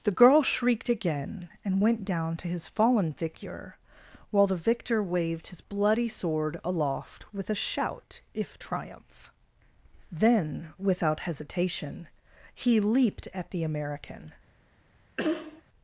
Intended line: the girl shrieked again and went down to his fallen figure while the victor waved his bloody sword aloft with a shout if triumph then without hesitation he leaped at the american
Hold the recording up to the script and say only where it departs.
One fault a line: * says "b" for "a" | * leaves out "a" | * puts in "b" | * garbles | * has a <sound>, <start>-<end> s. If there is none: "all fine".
* has a cough, 15.2-15.6 s